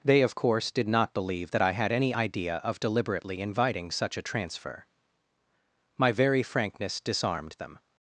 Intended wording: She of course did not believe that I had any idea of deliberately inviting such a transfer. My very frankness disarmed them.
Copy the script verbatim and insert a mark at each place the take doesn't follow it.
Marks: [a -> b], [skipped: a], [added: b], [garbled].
[She -> They] of course did not believe that I had any idea of deliberately inviting such a transfer. My very frankness disarmed them.